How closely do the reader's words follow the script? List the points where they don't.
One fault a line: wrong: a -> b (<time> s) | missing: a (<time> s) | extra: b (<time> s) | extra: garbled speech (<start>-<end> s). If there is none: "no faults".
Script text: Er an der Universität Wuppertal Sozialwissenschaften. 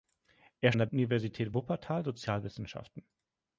no faults